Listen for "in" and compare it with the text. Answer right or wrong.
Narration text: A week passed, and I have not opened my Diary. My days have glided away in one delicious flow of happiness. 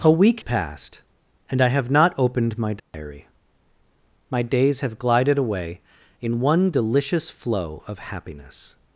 right